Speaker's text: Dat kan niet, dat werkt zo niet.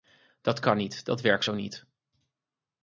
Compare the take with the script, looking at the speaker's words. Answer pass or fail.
pass